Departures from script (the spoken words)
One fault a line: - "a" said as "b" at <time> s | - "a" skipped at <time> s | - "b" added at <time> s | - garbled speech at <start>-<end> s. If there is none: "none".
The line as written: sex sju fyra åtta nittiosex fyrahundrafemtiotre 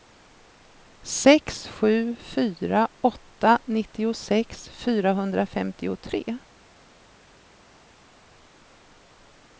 none